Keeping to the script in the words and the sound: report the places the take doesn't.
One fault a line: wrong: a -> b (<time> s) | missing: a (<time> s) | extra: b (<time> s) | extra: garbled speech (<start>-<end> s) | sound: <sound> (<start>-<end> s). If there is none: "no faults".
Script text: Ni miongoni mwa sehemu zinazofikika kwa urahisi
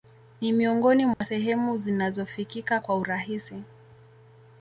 sound: dropout (1.1-1.2 s)